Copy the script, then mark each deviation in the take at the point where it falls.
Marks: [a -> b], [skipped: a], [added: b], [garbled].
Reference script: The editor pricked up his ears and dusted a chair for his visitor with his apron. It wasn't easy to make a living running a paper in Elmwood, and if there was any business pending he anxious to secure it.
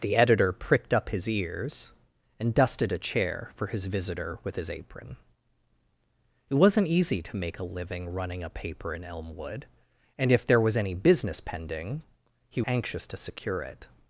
The editor pricked up his ears and dusted a chair for his visitor with his apron. It wasn't easy to make a living running a paper in Elmwood, and if there was any business pending he anxious to secure it.